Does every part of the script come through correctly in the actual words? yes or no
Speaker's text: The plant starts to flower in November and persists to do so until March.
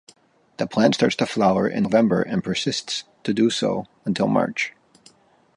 yes